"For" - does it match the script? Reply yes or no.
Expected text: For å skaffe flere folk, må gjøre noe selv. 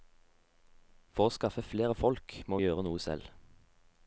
yes